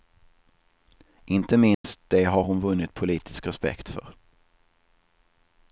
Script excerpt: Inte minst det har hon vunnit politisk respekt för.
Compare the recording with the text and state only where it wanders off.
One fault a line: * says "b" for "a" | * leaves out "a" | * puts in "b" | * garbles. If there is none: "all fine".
all fine